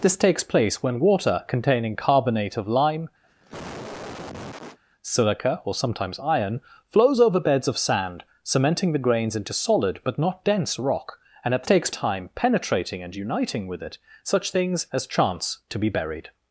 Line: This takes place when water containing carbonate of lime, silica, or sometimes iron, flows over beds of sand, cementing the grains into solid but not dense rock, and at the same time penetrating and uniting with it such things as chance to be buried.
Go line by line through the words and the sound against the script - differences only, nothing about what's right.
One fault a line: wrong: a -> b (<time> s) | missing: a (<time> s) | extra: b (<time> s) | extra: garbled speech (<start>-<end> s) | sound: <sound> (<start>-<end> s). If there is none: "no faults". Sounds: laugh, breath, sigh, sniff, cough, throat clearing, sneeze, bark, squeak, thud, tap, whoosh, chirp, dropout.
sound: cough (3.2-4.8 s)
wrong: same -> takes (11.6 s)